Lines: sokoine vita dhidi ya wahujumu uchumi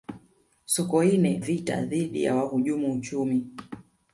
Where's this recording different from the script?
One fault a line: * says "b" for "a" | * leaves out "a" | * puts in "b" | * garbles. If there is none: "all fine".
all fine